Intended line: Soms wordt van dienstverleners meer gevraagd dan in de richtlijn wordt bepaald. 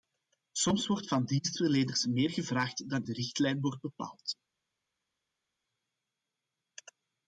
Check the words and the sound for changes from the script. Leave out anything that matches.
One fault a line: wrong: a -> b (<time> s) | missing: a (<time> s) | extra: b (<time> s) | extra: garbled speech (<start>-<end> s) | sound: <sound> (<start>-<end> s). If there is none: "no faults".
missing: in (3.0 s)